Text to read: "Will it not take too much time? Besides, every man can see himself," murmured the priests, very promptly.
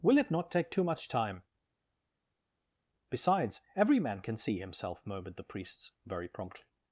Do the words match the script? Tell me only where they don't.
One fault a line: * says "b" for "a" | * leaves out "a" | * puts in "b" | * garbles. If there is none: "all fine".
all fine